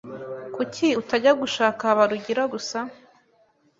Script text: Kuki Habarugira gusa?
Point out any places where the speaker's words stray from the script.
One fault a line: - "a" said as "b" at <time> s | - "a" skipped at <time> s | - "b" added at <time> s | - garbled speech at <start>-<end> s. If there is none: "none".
- "utajya gushaka" added at 1.0 s